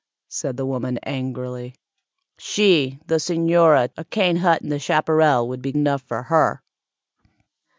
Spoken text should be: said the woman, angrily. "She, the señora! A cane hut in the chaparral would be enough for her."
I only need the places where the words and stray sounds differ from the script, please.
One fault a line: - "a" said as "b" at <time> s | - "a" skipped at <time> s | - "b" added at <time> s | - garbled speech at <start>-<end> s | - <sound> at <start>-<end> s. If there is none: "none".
none